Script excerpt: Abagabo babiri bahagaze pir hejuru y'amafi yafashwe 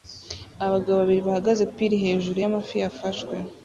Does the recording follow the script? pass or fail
pass